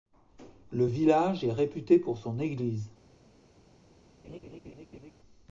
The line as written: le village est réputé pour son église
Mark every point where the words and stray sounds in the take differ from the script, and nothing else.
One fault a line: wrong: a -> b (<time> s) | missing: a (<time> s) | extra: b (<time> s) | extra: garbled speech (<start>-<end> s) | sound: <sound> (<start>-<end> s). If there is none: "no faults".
sound: laugh (4.2-5.1 s)